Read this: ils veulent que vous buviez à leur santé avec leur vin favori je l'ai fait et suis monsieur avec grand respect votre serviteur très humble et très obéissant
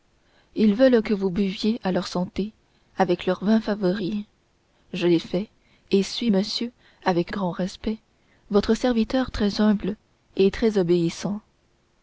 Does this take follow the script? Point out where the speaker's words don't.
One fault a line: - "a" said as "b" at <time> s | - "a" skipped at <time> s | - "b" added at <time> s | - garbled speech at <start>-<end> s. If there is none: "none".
none